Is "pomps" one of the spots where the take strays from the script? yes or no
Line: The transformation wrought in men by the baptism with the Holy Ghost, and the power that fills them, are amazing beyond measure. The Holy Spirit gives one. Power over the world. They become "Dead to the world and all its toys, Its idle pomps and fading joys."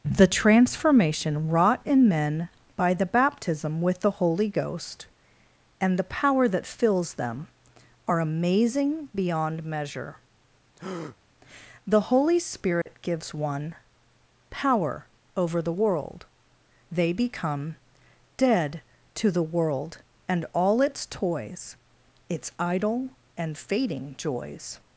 yes